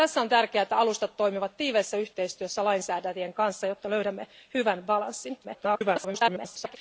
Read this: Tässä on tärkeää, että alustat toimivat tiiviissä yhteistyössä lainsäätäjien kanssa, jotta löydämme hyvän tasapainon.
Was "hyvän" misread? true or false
false